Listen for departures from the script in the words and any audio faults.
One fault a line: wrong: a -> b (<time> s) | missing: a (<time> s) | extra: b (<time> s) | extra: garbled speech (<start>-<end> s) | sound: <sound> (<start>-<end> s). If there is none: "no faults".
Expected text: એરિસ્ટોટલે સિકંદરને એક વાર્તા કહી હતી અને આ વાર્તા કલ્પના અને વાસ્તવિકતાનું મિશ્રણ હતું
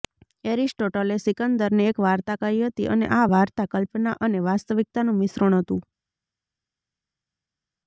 no faults